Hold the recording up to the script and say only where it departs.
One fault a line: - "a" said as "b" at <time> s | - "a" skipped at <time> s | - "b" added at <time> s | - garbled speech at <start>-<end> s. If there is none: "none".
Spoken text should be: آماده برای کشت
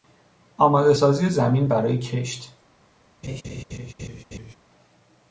- "سازی زمین" added at 0.9 s